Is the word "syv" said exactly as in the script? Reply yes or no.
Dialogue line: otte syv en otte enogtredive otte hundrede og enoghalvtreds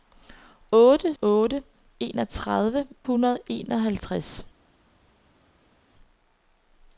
no